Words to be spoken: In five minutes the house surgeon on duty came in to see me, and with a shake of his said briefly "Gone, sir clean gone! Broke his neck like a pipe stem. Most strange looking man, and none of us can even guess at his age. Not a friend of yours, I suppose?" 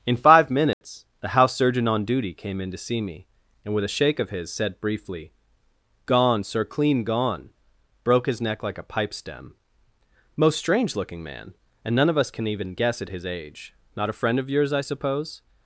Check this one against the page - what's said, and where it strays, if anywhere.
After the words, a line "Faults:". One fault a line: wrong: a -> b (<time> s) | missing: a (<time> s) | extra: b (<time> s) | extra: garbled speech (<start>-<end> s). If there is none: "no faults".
In five minutes the house surgeon on duty came in to see me, and with a shake of his said briefly "Gone, sir clean gone! Broke his neck like a pipe stem. Most strange looking man, and none of us can even guess at his age. Not a friend of yours, I suppose?"
Faults:
no faults